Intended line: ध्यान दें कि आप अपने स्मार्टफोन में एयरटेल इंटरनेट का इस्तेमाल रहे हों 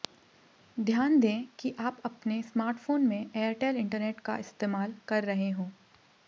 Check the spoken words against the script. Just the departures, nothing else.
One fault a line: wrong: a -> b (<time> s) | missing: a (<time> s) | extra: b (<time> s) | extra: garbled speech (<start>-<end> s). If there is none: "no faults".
extra: कर (5.1 s)